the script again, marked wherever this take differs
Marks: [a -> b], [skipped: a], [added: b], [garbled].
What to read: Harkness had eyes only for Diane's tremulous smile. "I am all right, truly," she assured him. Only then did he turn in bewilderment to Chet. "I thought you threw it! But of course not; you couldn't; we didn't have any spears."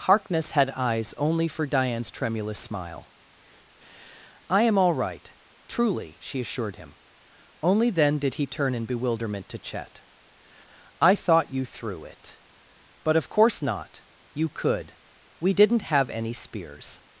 Harkness had eyes only for Diane's tremulous smile. "I am all right, truly," she assured him. Only then did he turn in bewilderment to Chet. "I thought you threw it! But of course not; you [couldn't; -> could] we didn't have any spears."